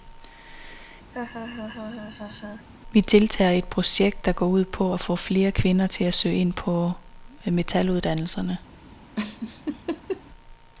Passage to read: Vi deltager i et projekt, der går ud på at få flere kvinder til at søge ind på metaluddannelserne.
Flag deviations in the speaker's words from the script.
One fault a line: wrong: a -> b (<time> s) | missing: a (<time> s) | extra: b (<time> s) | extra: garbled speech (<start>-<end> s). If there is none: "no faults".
no faults